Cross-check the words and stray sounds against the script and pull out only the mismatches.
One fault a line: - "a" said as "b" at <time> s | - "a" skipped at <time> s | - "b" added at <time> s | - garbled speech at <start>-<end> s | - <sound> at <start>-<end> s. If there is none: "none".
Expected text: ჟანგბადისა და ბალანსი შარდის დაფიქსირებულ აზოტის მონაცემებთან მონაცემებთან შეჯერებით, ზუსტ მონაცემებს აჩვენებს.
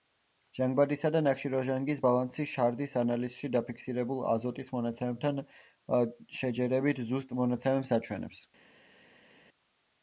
- "ნახშირორჟანგის" added at 1.2 s
- "ანალიზში" added at 3.0 s
- "მონაცემებთან" skipped at 5.4 s